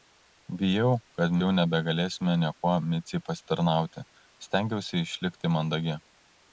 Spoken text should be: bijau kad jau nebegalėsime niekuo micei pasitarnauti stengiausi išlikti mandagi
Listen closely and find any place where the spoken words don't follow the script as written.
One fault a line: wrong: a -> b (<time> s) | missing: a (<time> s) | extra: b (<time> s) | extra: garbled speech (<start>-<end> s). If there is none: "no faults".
no faults